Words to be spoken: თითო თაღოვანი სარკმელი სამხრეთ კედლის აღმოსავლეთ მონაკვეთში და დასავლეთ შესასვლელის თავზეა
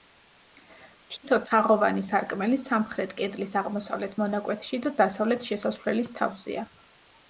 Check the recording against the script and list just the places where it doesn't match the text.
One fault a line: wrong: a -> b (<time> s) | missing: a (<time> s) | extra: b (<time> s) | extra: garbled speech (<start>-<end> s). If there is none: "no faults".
no faults